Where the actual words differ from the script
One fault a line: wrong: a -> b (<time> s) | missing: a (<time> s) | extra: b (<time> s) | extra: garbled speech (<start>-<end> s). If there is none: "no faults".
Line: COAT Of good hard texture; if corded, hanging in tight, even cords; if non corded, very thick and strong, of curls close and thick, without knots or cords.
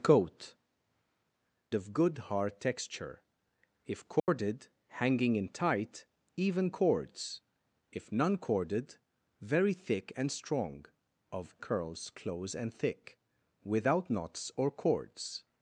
no faults